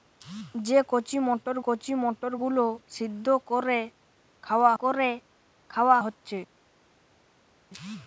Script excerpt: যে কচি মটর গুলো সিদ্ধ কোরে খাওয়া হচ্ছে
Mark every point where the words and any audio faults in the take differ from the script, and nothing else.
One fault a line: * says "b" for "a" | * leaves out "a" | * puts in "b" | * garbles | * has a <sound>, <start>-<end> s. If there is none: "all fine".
* puts in "কচি মটর"
* puts in "কোরে খাওয়া"